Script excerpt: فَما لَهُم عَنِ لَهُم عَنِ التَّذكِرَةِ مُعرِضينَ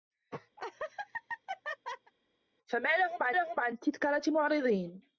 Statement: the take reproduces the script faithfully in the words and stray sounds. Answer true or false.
false